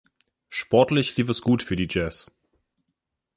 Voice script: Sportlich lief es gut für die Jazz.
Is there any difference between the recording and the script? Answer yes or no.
no